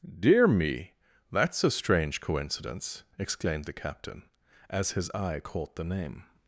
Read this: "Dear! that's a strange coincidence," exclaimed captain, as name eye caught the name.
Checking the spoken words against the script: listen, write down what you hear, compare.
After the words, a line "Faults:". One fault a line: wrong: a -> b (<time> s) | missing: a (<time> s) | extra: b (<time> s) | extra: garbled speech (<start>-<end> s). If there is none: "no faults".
"Dear me! that's a strange coincidence," exclaimed the captain, as his eye caught the name.
Faults:
extra: me (0.5 s)
extra: the (3.6 s)
wrong: name -> his (5.0 s)